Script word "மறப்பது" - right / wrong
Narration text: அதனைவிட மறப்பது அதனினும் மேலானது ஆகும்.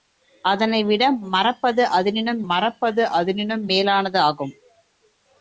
right